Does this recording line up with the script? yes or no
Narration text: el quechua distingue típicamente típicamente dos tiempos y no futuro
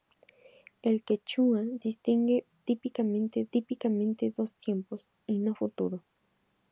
yes